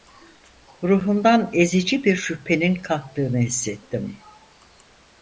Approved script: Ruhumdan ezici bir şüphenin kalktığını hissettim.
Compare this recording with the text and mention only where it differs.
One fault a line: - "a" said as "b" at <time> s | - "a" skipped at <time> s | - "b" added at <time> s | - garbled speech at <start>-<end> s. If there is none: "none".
none